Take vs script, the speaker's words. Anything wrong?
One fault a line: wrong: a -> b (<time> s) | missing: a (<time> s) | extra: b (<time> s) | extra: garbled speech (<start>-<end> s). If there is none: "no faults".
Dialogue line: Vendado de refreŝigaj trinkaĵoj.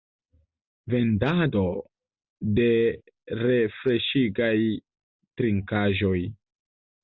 no faults